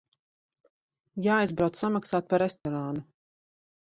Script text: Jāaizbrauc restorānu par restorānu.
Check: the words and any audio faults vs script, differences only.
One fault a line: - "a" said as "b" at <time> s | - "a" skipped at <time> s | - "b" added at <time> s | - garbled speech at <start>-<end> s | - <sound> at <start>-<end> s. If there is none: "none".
- "restorānu" said as "samaksāt" at 1.8 s
- dropout at 2.6-2.7 s